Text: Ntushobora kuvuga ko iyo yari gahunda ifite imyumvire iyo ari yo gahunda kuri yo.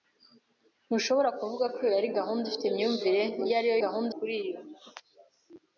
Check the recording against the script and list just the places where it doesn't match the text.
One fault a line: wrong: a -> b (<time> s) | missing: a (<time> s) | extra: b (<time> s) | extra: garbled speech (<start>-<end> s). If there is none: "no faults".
no faults